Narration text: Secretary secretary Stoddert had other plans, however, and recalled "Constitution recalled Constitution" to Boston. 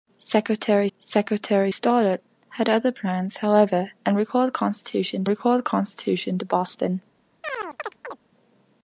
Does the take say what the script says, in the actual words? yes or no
yes